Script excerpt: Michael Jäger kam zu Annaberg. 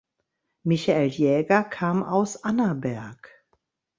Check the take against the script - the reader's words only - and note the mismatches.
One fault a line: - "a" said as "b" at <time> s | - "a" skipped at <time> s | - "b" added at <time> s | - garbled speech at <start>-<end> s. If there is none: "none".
- "zu" said as "aus" at 2.0 s